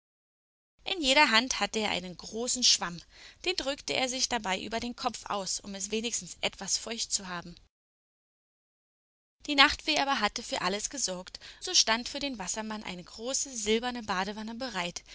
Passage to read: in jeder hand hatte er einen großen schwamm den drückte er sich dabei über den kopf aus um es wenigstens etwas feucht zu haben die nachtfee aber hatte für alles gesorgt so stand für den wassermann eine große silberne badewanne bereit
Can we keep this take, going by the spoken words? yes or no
yes